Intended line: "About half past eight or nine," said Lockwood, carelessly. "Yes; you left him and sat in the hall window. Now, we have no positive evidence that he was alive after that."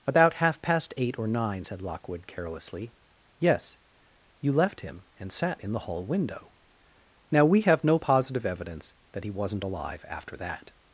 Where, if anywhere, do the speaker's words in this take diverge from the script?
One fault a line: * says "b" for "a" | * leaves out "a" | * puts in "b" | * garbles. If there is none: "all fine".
* says "wasn't" for "was"